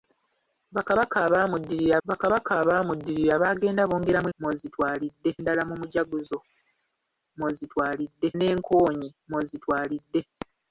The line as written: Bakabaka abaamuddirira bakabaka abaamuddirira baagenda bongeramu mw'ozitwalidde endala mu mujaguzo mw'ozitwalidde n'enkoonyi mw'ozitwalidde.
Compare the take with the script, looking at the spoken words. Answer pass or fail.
pass